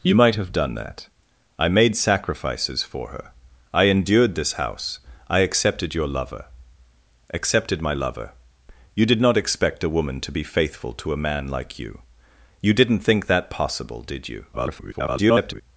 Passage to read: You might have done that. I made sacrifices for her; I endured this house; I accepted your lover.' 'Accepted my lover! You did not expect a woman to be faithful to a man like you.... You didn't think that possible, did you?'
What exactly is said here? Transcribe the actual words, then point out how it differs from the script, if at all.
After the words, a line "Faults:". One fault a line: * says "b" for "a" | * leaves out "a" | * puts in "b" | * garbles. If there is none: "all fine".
You might have done that. I made sacrifices for her; I endured this house; I accepted your lover.' 'Accepted my lover! You did not expect a woman to be faithful to a man like you.... You didn't think that possible, did you?' [garbled]
Faults:
* garbles